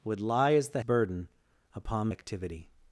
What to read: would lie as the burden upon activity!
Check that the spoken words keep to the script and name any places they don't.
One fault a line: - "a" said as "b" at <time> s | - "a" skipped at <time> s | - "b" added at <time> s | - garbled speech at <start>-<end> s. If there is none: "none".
none